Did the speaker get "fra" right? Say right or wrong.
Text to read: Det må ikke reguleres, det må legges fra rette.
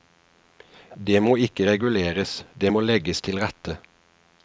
wrong